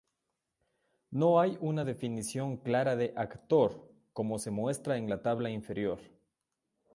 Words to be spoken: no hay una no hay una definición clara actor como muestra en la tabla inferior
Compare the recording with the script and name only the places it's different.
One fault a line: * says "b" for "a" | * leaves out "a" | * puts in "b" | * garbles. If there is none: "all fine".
* leaves out "no hay una"
* puts in "de"
* puts in "se"